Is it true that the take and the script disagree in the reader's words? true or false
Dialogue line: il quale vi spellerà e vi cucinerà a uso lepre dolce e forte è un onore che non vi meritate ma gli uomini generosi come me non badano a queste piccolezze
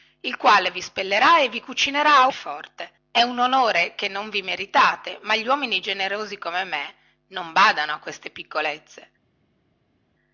true